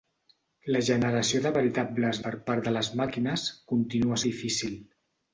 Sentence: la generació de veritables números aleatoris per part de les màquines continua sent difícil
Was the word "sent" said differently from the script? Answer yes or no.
yes